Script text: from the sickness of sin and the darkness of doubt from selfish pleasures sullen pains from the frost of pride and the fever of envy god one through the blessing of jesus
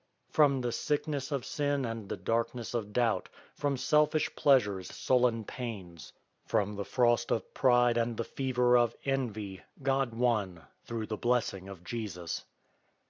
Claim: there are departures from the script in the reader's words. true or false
false